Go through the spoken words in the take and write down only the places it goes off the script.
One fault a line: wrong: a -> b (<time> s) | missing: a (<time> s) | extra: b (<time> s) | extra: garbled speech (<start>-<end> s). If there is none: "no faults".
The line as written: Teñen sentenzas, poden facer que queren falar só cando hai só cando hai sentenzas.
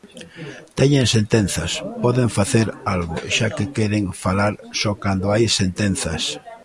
extra: algo xa (2.9 s)
missing: só cando hai (5.4 s)